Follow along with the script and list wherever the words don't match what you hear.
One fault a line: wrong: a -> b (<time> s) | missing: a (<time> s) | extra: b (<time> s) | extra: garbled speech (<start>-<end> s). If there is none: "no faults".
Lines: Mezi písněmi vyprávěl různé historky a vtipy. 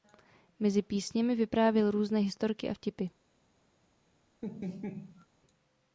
no faults